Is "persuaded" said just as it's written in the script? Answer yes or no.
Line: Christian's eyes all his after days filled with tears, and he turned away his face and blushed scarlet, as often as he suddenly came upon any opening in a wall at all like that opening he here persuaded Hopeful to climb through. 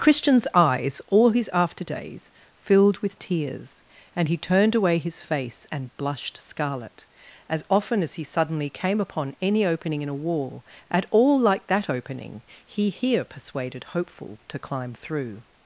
yes